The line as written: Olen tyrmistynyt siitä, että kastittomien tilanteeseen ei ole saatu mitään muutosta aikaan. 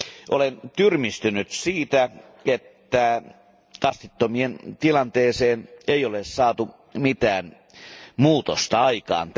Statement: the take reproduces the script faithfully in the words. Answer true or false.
true